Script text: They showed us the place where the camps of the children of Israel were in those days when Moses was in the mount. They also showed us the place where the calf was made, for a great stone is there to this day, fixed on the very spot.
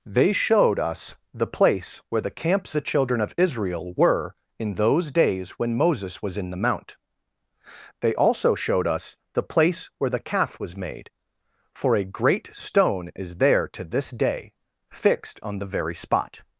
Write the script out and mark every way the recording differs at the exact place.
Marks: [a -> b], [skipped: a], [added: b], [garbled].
They showed us the place where the camps [skipped: of] the children of Israel were in those days when Moses was in the mount. They also showed us the place where the calf was made, for a great stone is there to this day, fixed on the very spot.